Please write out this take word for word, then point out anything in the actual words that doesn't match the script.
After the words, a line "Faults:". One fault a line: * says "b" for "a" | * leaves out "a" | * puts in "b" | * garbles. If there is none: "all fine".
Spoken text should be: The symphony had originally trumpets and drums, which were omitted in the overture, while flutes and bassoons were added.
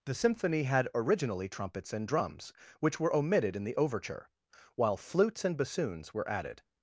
The symphony had originally trumpets and drums, which were omitted in the overture, while flutes and bassoons were added.
Faults:
all fine